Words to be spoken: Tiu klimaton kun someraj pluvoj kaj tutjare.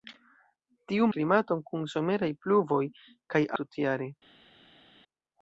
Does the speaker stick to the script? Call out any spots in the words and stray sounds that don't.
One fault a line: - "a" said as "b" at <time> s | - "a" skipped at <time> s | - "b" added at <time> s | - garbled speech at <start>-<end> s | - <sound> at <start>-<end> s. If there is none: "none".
none